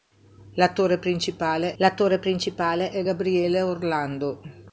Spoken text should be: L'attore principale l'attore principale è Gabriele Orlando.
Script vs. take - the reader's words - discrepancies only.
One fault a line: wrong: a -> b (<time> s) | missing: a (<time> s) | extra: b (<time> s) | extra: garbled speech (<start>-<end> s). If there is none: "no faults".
no faults